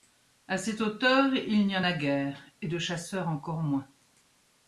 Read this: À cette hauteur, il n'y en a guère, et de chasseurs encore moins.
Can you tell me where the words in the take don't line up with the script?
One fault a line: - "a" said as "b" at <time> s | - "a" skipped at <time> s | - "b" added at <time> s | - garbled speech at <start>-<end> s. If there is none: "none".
none